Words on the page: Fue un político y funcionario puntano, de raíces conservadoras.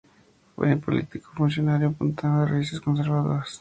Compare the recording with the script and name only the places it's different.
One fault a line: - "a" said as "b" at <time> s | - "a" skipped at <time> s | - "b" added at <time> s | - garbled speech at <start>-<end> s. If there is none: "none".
none